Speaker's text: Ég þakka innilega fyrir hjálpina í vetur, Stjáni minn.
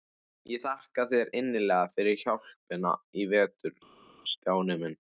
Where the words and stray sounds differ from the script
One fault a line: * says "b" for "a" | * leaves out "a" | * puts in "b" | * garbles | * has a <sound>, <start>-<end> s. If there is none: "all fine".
* puts in "þér"